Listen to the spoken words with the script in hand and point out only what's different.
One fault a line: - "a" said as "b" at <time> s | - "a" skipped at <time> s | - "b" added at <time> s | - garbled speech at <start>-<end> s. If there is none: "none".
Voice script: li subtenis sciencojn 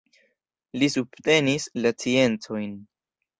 - "la" added at 1.8 s